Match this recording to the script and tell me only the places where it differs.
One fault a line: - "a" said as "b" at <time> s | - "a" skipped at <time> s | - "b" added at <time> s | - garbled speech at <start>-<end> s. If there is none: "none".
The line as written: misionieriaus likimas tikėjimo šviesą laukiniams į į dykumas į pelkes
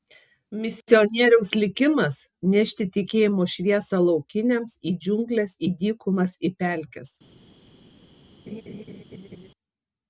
- "nešti" added at 2.5 s
- "džiungles" added at 5.0 s